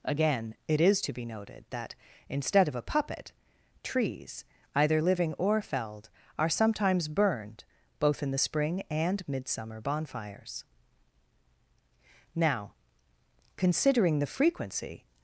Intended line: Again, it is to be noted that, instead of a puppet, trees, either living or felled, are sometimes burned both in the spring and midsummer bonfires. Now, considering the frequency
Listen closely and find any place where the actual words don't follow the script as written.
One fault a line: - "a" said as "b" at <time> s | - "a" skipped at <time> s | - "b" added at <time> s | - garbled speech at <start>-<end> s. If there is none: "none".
none